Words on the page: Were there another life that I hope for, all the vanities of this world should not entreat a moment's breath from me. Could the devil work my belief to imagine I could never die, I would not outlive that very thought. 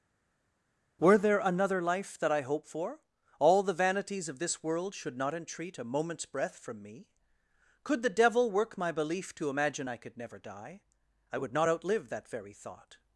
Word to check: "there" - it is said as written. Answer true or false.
true